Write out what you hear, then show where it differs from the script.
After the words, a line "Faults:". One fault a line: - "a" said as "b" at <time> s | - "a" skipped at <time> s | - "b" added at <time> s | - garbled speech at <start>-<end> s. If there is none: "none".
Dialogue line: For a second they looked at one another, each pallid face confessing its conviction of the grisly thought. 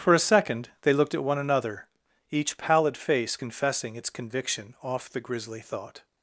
For a second they looked at one another, each pallid face confessing its conviction off the grisly thought.
Faults:
- "of" said as "off" at 4.8 s